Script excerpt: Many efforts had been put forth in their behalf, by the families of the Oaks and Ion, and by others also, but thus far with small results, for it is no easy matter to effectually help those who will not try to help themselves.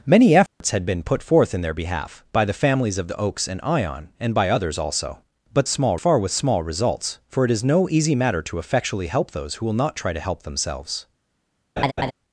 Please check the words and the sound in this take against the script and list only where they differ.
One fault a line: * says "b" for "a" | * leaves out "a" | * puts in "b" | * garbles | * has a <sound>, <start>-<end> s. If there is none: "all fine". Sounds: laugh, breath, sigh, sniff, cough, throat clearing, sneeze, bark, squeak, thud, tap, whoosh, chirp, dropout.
* has a dropout, 0.5-0.6 s
* says "small" for "thus"
* has a laugh, 11.8-12.1 s